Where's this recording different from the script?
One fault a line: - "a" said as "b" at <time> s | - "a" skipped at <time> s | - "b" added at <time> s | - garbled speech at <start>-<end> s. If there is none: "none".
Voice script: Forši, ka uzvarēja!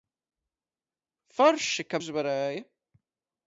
none